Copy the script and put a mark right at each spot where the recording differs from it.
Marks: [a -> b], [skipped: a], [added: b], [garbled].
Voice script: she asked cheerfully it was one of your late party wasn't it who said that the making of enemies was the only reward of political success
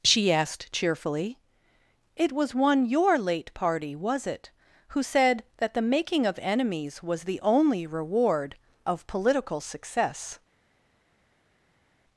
she asked cheerfully it was one [skipped: of] your late party [wasn't -> was] it who said that the making of enemies was the only reward of political success